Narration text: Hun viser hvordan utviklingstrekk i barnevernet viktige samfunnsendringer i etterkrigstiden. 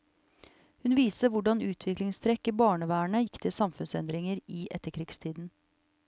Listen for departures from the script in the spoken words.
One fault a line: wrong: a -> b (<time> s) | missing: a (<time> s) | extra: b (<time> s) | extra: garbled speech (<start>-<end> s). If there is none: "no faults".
no faults